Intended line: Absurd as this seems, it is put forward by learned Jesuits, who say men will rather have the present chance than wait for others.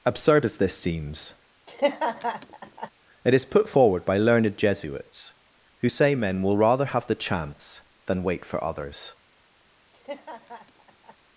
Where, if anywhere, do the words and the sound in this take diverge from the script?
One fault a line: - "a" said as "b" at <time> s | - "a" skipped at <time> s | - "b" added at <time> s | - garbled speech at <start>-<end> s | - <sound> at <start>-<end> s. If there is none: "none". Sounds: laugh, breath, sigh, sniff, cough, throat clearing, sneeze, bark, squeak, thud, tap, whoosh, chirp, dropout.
- laugh at 1.7-2.9 s
- "present" skipped at 7.1 s
- laugh at 9.9-11.2 s